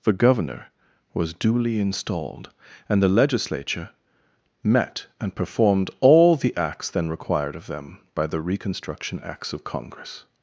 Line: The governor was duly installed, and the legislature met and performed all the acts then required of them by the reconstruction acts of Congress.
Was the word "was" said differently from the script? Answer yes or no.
no